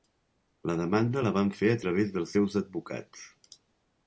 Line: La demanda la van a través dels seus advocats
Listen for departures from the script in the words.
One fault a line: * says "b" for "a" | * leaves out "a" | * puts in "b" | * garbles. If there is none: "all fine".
* puts in "fer"